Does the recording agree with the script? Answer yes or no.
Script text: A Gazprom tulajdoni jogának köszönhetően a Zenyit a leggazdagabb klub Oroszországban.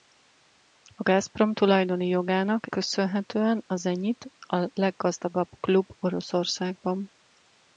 yes